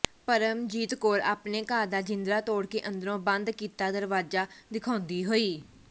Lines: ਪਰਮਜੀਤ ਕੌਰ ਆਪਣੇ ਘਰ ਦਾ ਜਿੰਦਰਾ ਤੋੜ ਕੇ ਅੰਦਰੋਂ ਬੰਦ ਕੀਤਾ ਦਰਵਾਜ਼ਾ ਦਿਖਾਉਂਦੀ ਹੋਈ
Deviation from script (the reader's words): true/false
false